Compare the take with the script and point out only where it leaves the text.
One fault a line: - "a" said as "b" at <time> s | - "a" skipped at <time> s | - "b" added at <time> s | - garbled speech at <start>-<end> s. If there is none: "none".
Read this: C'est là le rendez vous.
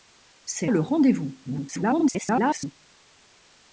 - "là" skipped at 0.7 s
- garbled speech at 1.4-2.7 s